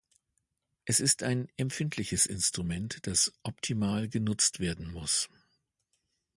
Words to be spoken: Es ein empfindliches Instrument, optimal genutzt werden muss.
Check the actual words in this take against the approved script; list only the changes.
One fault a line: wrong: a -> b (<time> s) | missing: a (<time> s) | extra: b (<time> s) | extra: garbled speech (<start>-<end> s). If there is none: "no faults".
extra: ist (1.0 s)
extra: das (3.1 s)